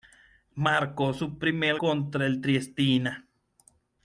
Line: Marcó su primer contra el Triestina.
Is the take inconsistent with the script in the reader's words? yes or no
no